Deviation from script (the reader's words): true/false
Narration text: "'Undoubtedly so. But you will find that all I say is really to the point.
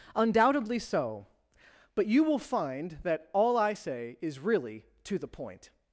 false